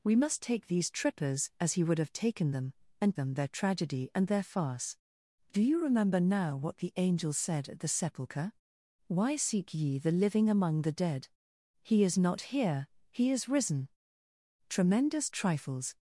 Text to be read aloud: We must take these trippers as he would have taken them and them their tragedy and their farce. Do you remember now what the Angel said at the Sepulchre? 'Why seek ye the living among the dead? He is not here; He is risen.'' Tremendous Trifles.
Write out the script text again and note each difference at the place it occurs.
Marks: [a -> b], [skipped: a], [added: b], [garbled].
We must take these trippers as he would have taken them and them their tragedy and their farce. Do you remember now what the Angel said at the Sepulchre? 'Why seek ye the living among the dead? He is not here; He is risen.'' Tremendous Trifles.